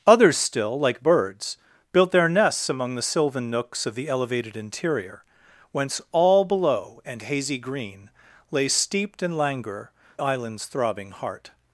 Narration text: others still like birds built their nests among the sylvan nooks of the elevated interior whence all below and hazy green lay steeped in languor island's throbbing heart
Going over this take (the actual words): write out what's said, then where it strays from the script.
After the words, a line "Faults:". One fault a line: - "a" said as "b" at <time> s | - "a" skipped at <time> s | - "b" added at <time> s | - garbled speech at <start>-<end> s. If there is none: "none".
others still like birds built their nests among the sylvan nooks of the elevated interior whence all below and hazy green lay steeped in languor island's throbbing heart
Faults:
none